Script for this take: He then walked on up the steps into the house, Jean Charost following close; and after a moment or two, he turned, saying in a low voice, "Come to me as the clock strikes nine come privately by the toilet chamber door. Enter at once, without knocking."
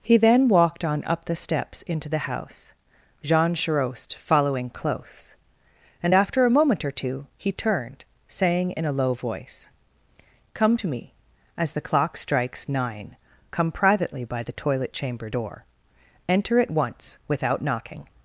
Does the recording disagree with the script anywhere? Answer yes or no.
no